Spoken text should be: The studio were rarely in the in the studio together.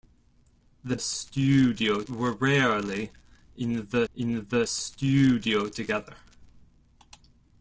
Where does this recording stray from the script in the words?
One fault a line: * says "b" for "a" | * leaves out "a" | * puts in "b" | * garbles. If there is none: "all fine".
all fine